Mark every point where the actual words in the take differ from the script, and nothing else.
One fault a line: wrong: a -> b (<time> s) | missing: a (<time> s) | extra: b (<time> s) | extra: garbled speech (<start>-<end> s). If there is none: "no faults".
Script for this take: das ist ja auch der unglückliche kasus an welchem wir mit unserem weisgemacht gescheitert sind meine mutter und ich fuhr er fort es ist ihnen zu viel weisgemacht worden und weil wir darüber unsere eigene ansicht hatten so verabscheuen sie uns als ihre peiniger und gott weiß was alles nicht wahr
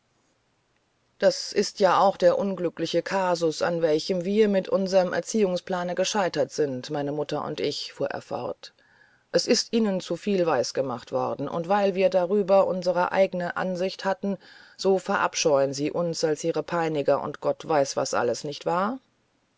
wrong: weisgemacht -> erziehungsplane (5.1 s)